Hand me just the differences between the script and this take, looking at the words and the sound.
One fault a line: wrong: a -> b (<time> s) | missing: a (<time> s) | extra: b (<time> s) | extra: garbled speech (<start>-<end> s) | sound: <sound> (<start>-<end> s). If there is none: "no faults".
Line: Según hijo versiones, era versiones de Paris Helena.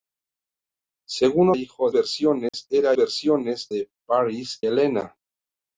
sound: dropout (2.5-2.5 s)